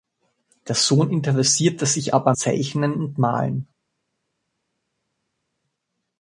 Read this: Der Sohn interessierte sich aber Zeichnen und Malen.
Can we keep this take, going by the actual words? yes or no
yes